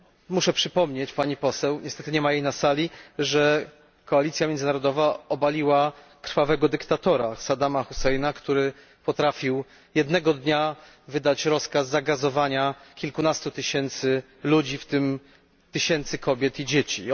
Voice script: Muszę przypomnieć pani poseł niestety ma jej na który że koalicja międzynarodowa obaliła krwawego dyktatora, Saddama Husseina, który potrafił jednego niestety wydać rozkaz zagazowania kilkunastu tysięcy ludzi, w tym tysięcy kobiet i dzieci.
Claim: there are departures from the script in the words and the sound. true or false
true